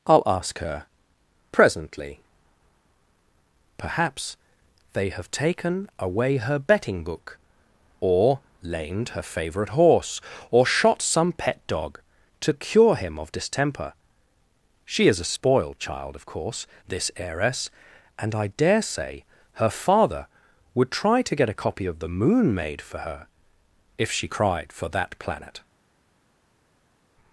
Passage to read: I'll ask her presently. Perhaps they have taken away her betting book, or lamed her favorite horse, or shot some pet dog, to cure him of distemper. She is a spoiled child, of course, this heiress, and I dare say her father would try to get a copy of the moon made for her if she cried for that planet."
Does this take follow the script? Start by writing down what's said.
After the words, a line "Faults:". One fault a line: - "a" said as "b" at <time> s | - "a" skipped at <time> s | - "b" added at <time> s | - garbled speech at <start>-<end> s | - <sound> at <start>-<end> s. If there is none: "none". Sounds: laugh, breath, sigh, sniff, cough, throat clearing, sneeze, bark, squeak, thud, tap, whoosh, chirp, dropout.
I'll ask her presently. Perhaps they have taken away her betting book, or lamed her favorite horse, or shot some pet dog, to cure him of distemper. She is a spoiled child, of course, this heiress, and I dare say her father would try to get a copy of the moon made for her if she cried for that planet."
Faults:
none